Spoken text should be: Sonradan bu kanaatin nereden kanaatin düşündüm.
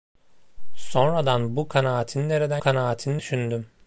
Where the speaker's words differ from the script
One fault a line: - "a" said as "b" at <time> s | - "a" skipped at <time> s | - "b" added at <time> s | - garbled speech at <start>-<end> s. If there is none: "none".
none